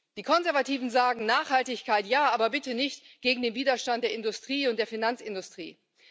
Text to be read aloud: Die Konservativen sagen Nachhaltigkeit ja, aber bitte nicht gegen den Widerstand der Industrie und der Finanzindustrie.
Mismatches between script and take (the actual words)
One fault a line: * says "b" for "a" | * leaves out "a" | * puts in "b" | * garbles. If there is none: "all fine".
all fine